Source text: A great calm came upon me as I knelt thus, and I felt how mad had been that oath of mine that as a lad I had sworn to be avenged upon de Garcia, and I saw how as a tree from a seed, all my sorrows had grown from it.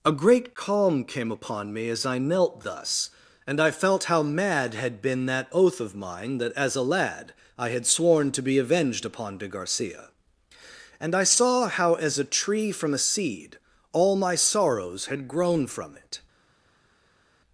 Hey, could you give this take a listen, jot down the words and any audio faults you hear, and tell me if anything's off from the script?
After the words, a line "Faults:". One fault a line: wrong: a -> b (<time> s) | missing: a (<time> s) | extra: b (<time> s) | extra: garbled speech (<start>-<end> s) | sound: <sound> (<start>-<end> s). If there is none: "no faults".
A great calm came upon me as I knelt thus, and I felt how mad had been that oath of mine that as a lad I had sworn to be avenged upon de Garcia, and I saw how as a tree from a seed, all my sorrows had grown from it.
Faults:
no faults